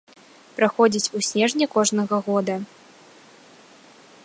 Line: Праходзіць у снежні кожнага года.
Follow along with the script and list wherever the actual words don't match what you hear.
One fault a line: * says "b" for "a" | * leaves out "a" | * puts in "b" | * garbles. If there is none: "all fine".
all fine